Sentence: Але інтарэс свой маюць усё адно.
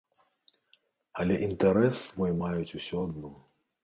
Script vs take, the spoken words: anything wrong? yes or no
no